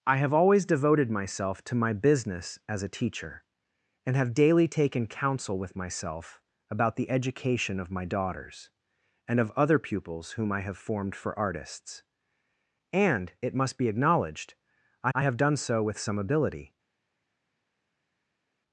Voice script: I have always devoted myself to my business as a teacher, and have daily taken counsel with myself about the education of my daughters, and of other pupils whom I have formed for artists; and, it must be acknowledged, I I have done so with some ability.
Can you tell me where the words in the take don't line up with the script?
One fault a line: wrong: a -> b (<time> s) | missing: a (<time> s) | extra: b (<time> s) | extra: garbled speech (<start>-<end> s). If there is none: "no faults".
no faults